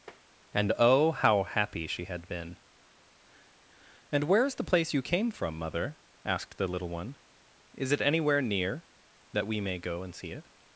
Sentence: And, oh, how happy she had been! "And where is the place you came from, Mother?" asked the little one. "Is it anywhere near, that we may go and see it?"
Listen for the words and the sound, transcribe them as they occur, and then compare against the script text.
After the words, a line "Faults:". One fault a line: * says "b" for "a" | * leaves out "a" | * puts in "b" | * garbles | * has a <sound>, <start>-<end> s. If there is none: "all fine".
And, oh, how happy she had been! "And where is the place you came from, Mother?" asked the little one. "Is it anywhere near, that we may go and see it?"
Faults:
* has a tap, 0.1-0.2 s